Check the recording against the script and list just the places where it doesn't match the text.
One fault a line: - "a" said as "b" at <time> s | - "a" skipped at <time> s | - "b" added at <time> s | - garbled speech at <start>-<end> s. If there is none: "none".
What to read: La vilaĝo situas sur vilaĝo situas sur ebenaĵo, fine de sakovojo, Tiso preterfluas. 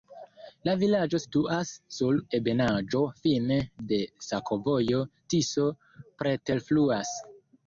- "vilaĝo situas sur" skipped at 2.2 s